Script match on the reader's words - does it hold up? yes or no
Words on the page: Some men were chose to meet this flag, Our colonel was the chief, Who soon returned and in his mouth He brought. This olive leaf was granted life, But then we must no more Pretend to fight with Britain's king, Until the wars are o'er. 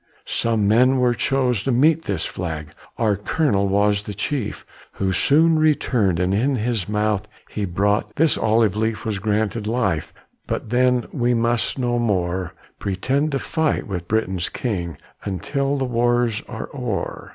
yes